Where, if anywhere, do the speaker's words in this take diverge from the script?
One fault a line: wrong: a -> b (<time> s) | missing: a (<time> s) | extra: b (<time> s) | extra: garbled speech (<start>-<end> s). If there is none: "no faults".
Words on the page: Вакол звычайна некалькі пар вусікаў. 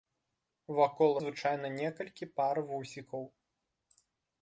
no faults